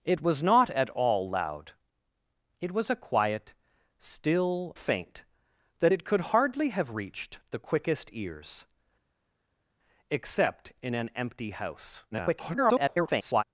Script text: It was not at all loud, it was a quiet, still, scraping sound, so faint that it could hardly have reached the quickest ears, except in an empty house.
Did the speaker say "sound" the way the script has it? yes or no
no